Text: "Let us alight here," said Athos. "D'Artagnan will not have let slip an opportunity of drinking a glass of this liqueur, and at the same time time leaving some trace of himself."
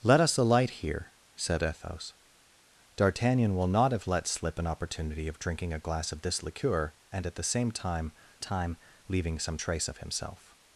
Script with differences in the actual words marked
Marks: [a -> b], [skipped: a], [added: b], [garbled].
"Let us alight here," said Athos. "D'Artagnan will not have let slip an opportunity of drinking a glass of this liqueur, and at the same time time leaving some trace of himself."